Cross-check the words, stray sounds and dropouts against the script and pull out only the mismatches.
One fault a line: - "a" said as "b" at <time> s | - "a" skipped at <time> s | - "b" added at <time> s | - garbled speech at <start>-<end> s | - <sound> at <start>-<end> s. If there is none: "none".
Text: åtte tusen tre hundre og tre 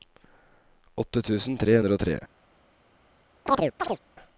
- chirp at 3.5-4.0 s